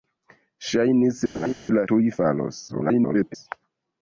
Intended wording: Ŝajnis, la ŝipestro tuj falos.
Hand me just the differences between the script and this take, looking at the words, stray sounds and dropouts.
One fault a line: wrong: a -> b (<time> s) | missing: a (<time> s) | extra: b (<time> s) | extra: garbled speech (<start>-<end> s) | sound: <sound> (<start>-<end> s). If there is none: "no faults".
sound: laugh (1.3-1.5 s)
missing: ŝipestro (1.8 s)
extra: garbled speech (2.7-3.4 s)